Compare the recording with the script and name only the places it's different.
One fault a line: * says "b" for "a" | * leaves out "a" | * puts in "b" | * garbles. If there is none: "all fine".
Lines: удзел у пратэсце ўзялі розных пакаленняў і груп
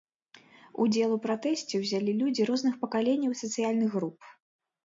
* puts in "людзі"
* puts in "сацыяльных"